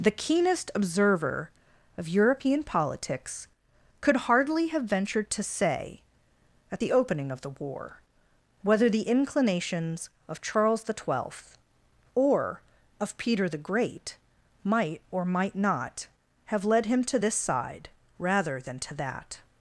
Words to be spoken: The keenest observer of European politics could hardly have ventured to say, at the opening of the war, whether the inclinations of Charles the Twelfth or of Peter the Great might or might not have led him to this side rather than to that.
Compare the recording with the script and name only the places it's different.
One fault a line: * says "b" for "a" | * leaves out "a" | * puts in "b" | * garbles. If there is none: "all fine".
all fine